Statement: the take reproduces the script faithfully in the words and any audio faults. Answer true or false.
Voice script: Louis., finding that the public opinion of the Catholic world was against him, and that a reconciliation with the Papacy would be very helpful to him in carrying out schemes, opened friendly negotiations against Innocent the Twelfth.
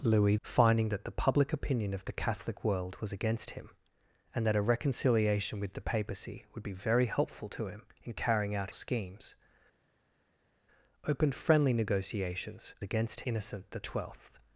true